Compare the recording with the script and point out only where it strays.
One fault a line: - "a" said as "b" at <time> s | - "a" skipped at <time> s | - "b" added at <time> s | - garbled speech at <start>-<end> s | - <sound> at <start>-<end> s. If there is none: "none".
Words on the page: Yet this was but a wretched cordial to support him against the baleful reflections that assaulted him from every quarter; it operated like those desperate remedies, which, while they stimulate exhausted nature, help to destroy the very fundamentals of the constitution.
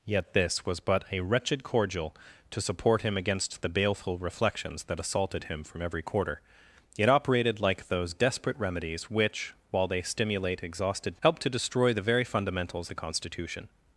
- "nature" skipped at 11.2 s
- "of" skipped at 12.9 s